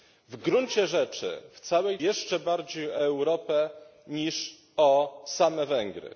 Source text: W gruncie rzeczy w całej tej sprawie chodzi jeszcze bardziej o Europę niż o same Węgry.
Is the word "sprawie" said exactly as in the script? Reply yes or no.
no